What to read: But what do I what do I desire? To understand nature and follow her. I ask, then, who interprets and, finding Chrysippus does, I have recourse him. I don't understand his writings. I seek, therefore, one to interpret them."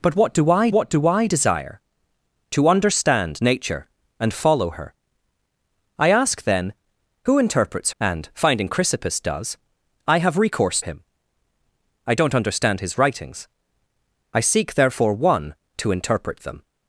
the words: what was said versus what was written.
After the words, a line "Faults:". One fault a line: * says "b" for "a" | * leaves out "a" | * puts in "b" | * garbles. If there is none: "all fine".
But what do I what do I desire? To understand nature and follow her. I ask, then, who interprets and, finding Chrysippus does, I have recourse him. I don't understand his writings. I seek, therefore, one to interpret them."
Faults:
all fine